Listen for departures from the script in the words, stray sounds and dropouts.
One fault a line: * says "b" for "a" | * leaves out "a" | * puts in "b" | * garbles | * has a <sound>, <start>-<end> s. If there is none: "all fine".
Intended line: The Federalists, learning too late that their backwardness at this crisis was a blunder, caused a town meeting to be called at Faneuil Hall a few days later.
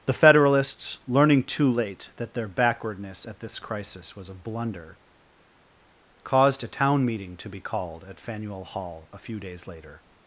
all fine